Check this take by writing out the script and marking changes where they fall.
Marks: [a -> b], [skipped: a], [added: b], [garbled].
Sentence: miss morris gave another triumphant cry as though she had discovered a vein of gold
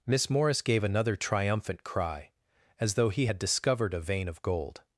miss morris gave another triumphant cry as though [she -> he] had discovered a vein of gold